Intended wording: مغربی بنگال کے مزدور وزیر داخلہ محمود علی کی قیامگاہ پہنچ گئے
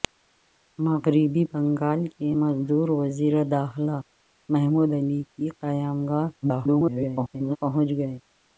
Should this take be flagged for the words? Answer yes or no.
yes